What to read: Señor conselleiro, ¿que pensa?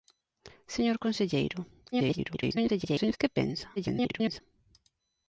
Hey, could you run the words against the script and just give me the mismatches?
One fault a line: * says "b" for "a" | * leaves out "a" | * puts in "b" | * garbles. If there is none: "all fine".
* garbles
* garbles